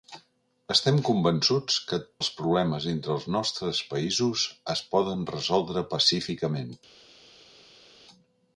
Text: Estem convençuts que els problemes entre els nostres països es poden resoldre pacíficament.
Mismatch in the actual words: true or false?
false